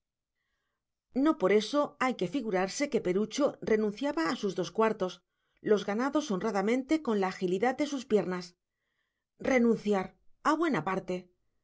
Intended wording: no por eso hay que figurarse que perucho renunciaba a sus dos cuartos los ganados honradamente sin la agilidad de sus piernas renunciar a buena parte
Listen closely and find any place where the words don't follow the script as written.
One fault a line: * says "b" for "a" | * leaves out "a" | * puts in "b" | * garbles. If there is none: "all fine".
* says "con" for "sin"